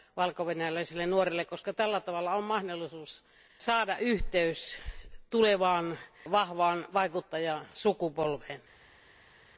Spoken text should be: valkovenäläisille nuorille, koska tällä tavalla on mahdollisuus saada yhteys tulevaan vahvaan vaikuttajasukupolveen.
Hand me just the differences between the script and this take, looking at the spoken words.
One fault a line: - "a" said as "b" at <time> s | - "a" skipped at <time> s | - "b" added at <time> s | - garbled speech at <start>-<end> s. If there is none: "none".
none